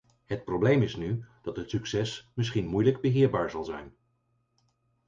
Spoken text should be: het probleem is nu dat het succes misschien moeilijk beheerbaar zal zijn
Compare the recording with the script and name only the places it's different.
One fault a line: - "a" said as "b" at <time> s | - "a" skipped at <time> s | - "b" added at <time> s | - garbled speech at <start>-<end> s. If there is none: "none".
none